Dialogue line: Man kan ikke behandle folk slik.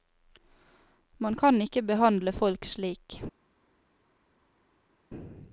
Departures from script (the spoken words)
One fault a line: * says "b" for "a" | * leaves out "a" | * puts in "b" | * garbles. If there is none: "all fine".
all fine